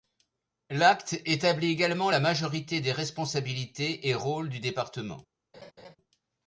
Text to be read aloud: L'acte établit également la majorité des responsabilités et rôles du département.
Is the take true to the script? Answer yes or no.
yes